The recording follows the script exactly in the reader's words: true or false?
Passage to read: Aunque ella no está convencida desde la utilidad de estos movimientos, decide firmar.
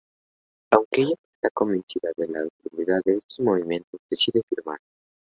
false